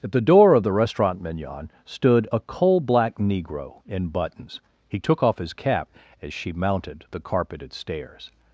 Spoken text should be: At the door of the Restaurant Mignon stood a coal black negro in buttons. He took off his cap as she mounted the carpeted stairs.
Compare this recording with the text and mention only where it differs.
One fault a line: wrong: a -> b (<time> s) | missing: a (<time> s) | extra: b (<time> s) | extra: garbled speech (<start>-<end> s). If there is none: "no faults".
no faults